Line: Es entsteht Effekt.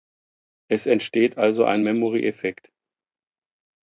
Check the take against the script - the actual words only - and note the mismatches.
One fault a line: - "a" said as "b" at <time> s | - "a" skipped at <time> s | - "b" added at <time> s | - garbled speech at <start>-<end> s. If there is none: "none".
- "also ein Memory" added at 1.4 s